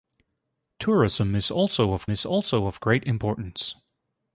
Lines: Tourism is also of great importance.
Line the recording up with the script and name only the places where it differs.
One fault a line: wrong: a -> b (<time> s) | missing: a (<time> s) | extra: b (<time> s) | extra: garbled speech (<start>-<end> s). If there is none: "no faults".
extra: is also of (2.1 s)